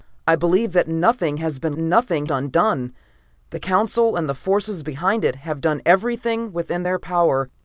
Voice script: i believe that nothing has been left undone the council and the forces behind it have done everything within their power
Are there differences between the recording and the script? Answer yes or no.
yes